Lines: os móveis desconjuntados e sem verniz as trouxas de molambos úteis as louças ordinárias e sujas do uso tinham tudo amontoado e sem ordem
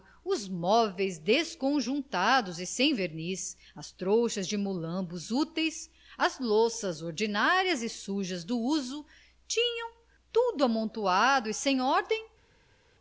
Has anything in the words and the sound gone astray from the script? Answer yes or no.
no